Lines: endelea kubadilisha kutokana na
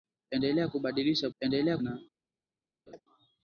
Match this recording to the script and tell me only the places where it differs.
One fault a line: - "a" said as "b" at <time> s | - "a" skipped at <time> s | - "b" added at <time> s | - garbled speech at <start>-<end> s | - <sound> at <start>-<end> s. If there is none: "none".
- "kutokana" said as "endelea" at 1.4 s
- laugh at 2.9-3.0 s